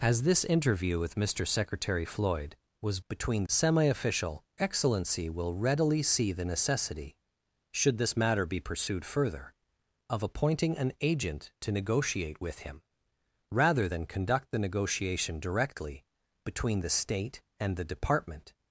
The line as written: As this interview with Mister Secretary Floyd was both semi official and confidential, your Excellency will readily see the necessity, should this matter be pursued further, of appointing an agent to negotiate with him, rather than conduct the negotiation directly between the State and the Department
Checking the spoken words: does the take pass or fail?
fail